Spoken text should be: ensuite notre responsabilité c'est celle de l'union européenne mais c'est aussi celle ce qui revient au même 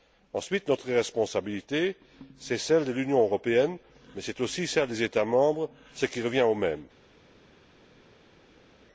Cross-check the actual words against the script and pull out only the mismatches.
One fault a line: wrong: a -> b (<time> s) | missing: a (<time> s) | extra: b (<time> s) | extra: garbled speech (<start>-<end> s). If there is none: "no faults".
extra: des états membres (4.9 s)